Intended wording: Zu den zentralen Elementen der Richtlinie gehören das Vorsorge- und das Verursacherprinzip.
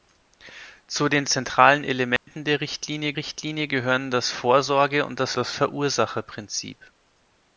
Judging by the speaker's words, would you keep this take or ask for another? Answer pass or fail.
fail